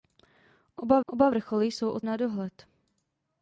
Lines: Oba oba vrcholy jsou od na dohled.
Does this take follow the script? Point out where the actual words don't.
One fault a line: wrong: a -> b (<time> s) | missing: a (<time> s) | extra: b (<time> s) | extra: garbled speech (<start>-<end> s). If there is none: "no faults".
no faults